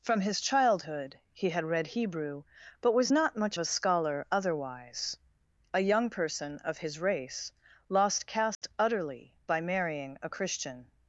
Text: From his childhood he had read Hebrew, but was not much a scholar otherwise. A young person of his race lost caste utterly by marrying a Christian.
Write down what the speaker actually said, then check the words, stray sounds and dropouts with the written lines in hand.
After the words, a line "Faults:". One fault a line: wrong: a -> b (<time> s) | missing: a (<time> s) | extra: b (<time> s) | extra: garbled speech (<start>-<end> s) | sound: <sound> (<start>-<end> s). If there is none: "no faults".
From his childhood he had read Hebrew, but was not much a scholar otherwise. A young person of his race lost caste utterly by marrying a Christian.
Faults:
sound: dropout (8.5-8.6 s)